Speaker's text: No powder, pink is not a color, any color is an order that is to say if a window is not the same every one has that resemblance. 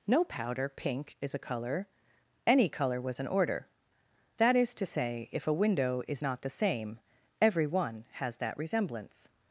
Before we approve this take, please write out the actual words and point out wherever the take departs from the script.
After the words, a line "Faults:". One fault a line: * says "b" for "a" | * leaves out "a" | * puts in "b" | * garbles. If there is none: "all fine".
No powder, pink is a color, any color was an order that is to say if a window is not the same every one has that resemblance.
Faults:
* leaves out "not"
* says "was" for "is"